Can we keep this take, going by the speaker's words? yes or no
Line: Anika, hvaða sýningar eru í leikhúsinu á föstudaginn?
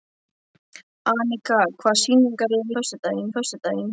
no